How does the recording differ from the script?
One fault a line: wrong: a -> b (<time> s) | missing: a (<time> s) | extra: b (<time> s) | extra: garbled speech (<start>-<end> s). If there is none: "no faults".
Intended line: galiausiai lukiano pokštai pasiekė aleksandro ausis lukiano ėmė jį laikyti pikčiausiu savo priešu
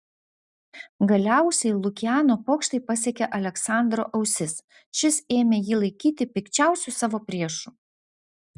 wrong: lukiano -> šis (5.0 s)